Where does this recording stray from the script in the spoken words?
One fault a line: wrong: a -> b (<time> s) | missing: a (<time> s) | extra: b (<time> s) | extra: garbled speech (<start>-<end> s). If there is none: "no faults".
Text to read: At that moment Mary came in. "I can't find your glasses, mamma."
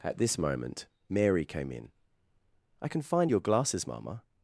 wrong: that -> this (0.2 s)
wrong: can't -> can (2.9 s)